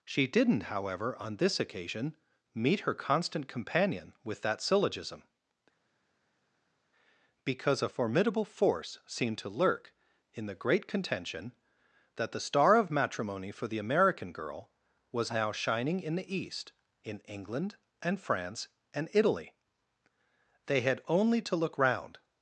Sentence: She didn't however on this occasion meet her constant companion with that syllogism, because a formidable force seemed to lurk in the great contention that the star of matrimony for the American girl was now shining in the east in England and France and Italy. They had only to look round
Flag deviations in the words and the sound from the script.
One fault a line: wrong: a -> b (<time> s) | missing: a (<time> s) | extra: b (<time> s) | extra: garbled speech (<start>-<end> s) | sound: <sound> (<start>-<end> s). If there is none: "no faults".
no faults